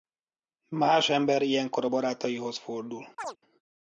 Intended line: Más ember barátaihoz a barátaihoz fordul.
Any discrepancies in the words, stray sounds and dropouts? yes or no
yes